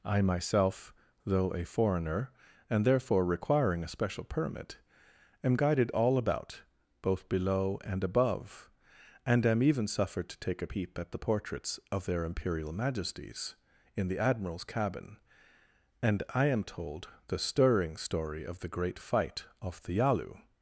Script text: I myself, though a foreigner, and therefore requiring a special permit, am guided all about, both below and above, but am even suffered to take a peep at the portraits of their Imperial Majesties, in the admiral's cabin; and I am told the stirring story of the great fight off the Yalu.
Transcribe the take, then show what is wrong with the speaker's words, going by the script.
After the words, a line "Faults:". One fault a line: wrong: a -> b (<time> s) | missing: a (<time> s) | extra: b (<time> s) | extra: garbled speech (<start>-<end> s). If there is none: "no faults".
I myself, though a foreigner, and therefore requiring a special permit, am guided all about, both below and above, and am even suffered to take a peep at the portraits of their Imperial Majesties, in the admiral's cabin; and I am told the stirring story of the great fight off the Yalu.
Faults:
wrong: but -> and (9.2 s)